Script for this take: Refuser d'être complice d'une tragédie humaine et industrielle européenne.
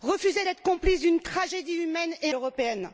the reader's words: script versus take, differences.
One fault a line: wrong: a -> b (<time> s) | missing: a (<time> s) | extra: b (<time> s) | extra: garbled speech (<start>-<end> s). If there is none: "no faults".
missing: industrielle (2.3 s)